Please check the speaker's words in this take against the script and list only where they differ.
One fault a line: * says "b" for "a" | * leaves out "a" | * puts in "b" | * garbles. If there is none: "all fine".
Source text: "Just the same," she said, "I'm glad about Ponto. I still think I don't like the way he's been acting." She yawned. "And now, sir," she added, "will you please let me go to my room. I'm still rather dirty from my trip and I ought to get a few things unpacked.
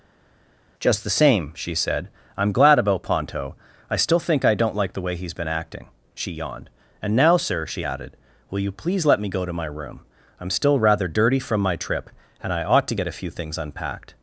all fine